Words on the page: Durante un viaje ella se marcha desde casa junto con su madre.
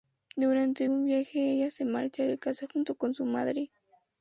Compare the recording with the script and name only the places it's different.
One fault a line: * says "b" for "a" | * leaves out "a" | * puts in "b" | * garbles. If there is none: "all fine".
* says "de" for "desde"